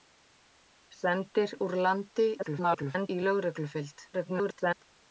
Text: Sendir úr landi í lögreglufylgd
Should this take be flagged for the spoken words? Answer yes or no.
yes